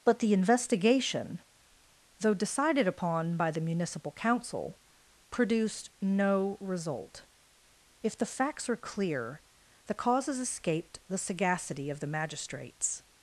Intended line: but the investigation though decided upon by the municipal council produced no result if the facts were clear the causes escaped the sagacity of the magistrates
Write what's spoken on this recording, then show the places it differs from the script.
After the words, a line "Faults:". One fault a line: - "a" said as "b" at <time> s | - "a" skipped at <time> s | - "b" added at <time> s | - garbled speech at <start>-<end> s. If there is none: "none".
but the investigation though decided upon by the municipal council produced no result if the facts are clear the causes escaped the sagacity of the magistrates
Faults:
- "were" said as "are" at 8.7 s